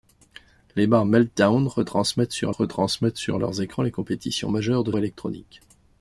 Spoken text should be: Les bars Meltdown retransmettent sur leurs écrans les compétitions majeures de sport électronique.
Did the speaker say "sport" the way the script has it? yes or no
no